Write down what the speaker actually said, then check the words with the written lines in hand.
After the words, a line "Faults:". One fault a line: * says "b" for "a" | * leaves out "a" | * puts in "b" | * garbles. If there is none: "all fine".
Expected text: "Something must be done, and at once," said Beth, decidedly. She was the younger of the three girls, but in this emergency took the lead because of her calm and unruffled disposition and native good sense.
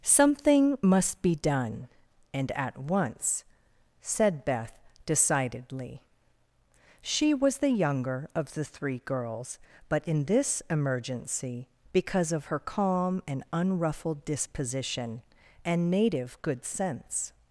"Something must be done, and at once," said Beth, decidedly. She was the younger of the three girls, but in this emergency because of her calm and unruffled disposition and native good sense.
Faults:
* leaves out "took the lead"